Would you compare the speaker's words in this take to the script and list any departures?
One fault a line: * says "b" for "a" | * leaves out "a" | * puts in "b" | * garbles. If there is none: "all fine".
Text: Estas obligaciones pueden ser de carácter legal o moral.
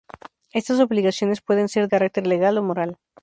* leaves out "de"